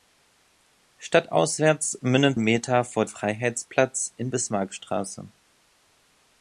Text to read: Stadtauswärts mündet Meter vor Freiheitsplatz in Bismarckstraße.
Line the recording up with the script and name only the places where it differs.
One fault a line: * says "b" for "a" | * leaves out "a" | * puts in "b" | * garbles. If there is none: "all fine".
all fine